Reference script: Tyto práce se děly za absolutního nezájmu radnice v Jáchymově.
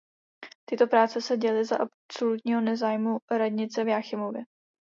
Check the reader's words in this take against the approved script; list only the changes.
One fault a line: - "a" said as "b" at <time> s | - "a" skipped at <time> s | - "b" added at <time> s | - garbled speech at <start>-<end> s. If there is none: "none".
none